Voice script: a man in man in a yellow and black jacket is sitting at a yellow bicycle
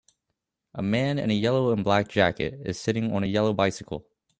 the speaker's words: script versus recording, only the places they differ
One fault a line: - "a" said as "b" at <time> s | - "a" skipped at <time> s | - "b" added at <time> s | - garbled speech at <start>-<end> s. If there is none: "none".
- "man in" skipped at 1.3 s
- "at" said as "on" at 3.1 s